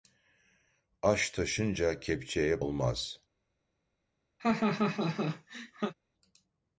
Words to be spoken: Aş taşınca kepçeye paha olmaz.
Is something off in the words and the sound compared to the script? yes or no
yes